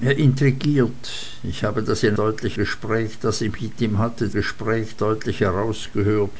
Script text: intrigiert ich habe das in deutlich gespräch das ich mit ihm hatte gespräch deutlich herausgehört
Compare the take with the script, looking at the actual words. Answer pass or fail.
pass